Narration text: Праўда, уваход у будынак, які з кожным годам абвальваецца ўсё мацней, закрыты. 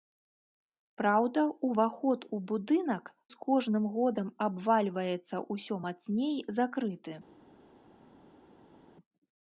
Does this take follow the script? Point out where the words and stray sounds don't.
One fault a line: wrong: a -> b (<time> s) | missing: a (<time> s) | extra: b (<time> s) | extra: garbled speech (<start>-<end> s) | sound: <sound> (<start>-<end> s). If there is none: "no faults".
missing: які (3.1 s)